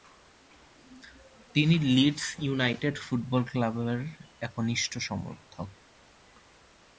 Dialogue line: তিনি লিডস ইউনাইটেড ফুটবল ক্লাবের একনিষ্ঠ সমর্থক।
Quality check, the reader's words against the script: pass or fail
pass